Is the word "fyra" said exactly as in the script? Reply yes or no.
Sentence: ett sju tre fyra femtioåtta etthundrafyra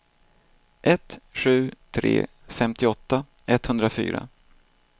no